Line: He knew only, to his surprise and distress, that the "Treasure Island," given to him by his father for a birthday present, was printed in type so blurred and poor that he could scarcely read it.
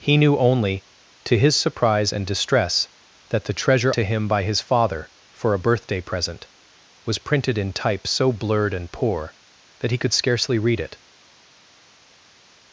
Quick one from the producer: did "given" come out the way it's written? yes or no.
no